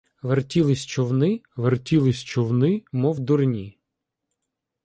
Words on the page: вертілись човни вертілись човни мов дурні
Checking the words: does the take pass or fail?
pass